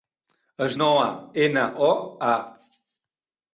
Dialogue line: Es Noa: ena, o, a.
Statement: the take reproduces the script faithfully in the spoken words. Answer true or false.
true